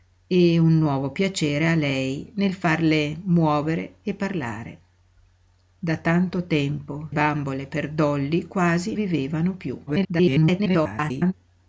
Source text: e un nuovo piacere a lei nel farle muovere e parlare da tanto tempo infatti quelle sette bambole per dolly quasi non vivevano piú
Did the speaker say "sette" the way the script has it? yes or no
no